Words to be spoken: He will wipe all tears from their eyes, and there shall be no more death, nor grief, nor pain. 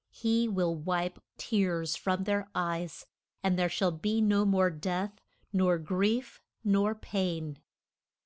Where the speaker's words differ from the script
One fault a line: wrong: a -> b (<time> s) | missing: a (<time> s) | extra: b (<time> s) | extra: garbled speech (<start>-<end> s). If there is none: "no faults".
missing: all (1.2 s)